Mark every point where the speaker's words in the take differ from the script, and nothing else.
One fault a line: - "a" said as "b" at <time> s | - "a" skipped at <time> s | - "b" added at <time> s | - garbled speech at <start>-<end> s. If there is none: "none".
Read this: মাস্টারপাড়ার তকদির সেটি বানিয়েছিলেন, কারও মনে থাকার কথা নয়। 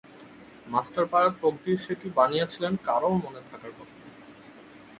none